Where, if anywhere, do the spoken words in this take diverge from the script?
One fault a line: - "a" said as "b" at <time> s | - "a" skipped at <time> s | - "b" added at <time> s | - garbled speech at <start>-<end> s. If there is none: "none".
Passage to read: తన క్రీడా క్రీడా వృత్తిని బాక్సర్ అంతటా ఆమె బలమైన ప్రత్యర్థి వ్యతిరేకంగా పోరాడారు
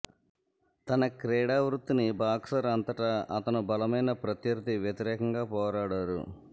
- "క్రీడా" skipped at 1.6 s
- "ఆమె" said as "అతను" at 3.4 s